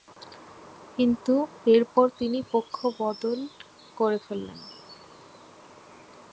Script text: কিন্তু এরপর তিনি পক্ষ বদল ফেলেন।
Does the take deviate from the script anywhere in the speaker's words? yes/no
yes